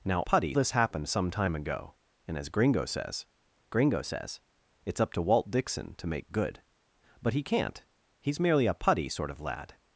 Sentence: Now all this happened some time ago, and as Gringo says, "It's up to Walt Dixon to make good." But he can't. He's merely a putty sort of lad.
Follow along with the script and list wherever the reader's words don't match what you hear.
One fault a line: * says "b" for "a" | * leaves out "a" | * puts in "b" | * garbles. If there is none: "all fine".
* says "putty" for "all"
* puts in "Gringo says"